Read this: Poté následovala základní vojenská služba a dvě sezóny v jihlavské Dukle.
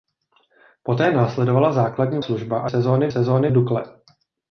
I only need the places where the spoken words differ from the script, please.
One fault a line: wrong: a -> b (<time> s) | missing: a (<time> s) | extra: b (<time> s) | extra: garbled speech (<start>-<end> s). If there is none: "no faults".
missing: vojenská (2.2 s)
missing: dvě (2.7 s)
wrong: jihlavské -> sezóny (3.1 s)